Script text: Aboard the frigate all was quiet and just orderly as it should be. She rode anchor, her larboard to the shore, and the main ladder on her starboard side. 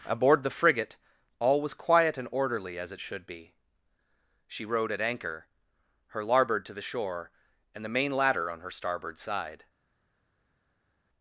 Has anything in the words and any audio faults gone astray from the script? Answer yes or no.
yes